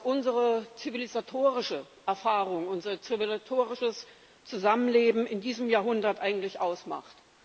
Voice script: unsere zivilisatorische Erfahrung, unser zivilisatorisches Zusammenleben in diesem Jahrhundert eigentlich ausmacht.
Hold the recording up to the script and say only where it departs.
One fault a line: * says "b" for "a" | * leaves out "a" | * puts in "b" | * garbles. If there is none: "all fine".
all fine